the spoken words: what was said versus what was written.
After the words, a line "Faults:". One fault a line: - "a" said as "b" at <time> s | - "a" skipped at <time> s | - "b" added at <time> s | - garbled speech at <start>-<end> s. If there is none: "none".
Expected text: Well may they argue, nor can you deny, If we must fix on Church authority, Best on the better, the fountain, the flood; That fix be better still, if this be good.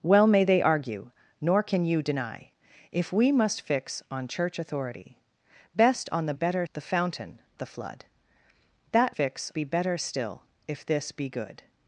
Well may they argue, nor can you deny, If we must fix on Church authority, Best on the better, the fountain, the flood; That fix be better still, if this be good.
Faults:
none